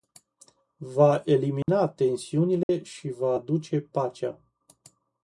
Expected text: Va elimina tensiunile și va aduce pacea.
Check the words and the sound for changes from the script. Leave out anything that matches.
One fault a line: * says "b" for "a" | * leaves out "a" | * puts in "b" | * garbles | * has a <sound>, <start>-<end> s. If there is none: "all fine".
* has a dropout, 1.6-1.7 s
* has a dropout, 2.6-2.7 s